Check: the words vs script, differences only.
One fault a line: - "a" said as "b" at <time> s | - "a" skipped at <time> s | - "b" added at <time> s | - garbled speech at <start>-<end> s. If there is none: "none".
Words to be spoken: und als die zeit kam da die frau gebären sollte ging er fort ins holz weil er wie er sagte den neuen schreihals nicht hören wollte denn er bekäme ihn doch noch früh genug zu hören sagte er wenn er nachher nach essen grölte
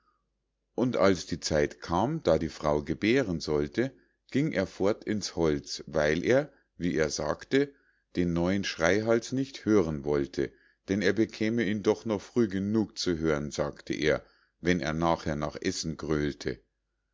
none